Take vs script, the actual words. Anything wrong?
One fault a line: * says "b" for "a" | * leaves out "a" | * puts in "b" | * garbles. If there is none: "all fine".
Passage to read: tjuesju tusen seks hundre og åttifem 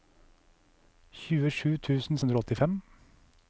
* leaves out "seks"